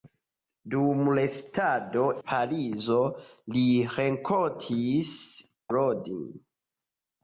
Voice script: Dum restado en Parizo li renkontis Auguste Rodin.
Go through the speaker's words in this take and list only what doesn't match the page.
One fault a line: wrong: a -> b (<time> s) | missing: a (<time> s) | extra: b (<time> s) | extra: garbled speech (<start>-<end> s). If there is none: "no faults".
missing: en (2.0 s)
missing: Auguste (5.2 s)